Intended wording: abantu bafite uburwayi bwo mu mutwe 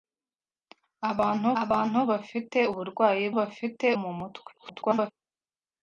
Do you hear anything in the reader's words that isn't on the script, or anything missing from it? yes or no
yes